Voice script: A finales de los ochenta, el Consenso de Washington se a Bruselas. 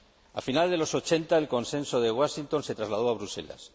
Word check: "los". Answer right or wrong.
right